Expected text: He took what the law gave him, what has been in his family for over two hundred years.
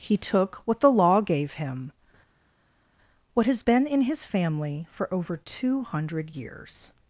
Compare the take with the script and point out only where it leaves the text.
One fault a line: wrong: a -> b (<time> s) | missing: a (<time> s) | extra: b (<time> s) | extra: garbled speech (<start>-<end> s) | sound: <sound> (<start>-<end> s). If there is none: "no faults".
no faults